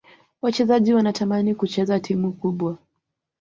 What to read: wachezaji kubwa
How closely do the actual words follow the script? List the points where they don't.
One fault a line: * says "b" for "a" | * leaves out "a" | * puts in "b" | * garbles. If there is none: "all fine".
* puts in "wanatamani kucheza timu"